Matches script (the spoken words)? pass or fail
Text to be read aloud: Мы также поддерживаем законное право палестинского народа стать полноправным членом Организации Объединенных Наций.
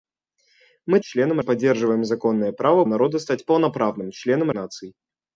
fail